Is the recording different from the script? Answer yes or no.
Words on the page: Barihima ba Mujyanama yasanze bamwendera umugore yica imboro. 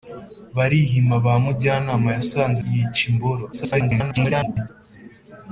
yes